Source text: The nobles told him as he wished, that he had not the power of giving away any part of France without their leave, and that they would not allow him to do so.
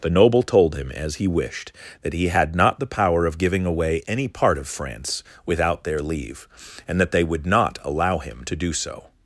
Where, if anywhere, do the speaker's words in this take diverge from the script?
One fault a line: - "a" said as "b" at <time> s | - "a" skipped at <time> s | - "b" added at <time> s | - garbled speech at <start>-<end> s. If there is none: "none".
- "nobles" said as "noble" at 0.1 s